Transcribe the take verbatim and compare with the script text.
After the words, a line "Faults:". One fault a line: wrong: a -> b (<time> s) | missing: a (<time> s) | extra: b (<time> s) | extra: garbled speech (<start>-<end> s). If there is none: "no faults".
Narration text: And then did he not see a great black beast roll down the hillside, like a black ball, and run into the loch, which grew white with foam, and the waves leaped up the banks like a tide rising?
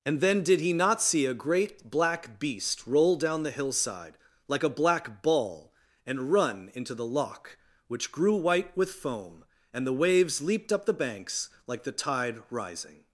And then did he not see a great black beast roll down the hillside, like a black ball, and run into the loch, which grew white with foam, and the waves leaped up the banks like the tide rising?
Faults:
wrong: a -> the (11.8 s)